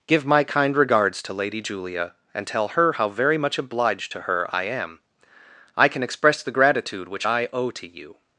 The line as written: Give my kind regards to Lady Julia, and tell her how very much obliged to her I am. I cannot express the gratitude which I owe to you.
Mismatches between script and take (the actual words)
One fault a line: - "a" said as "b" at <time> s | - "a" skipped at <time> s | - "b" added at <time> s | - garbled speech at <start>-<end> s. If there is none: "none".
- "cannot" said as "can" at 5.9 s